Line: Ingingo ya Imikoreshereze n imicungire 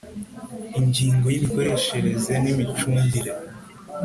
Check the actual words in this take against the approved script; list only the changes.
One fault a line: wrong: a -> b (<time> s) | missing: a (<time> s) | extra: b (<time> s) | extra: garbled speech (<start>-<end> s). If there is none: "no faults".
no faults